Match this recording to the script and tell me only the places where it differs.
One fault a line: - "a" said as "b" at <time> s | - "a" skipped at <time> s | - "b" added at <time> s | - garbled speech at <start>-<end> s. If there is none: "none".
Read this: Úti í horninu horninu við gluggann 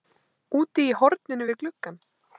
- "horninu" skipped at 1.5 s